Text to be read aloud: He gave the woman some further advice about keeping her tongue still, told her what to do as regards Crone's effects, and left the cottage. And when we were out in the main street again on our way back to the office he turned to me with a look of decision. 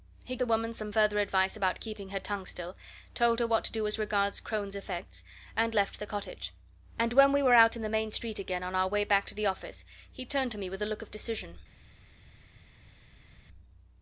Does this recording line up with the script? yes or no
no